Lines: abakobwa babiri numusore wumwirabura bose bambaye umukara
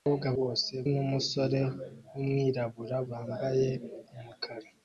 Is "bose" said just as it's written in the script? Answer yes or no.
no